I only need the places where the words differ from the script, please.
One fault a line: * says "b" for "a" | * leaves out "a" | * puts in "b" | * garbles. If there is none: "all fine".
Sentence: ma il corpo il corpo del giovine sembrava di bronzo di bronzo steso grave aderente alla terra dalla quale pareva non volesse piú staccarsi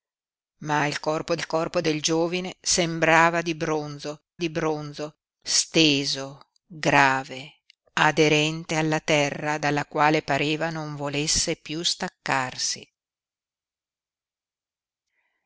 all fine